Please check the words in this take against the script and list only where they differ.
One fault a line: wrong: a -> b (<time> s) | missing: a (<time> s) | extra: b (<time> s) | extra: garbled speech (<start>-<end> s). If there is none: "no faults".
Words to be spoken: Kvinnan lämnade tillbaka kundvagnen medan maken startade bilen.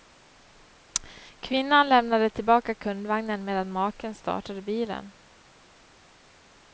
no faults